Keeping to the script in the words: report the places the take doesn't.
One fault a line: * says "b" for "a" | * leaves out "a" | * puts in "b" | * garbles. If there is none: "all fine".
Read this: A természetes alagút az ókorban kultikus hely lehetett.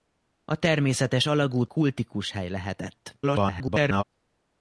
* leaves out "az ókorban"
* garbles